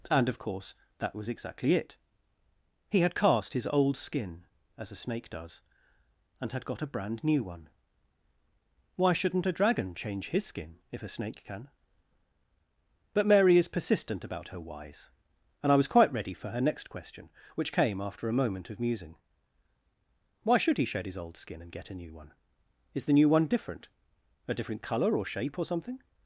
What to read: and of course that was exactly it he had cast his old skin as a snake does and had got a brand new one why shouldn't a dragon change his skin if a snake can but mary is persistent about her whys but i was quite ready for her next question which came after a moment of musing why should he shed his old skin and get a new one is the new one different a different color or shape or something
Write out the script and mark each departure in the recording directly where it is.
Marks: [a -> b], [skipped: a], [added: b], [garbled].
and of course that was exactly it he had cast his old skin as a snake does and had got a brand new one why shouldn't a dragon change his skin if a snake can but mary is persistent about her whys [but -> and] i was quite ready for her next question which came after a moment of musing why should he shed his old skin and get a new one is the new one different a different color or shape or something